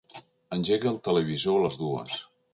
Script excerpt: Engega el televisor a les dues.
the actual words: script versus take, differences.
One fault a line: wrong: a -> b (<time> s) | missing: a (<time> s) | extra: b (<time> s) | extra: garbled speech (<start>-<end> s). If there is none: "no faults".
no faults